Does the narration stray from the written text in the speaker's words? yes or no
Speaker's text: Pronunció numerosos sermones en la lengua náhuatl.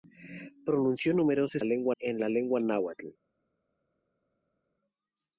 yes